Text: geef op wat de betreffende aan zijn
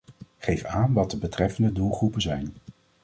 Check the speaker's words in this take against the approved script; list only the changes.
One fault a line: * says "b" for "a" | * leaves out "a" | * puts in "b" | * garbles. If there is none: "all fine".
* says "aan" for "op"
* says "doelgroepen" for "aan"